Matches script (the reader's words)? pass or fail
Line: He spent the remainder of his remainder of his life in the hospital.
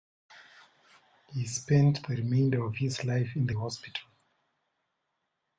fail